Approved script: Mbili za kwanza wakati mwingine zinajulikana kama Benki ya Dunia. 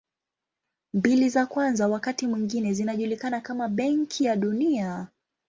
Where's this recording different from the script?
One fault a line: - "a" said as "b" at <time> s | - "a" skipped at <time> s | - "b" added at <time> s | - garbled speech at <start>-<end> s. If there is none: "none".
none